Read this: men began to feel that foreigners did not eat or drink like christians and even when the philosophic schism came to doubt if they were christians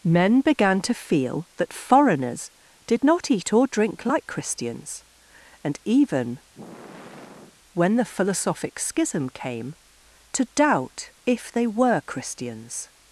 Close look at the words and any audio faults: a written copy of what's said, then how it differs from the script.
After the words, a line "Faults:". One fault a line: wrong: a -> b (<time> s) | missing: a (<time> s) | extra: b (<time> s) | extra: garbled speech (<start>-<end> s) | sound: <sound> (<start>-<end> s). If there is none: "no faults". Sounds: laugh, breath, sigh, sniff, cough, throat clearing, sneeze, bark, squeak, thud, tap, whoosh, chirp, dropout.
men began to feel that foreigners did not eat or drink like christians and even when the philosophic schism came to doubt if they were christians
Faults:
sound: sigh (6.5-7.6 s)